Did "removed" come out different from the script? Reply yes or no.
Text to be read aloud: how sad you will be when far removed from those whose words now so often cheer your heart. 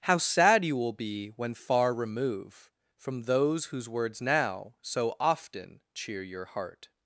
yes